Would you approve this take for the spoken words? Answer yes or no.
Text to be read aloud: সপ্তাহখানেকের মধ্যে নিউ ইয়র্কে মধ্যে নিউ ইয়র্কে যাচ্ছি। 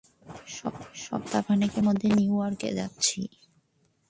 no